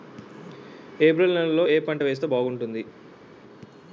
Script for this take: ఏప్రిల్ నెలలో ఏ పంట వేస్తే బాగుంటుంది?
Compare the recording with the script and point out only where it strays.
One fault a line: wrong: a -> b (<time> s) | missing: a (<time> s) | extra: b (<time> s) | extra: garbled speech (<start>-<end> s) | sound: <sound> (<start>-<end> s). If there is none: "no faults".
no faults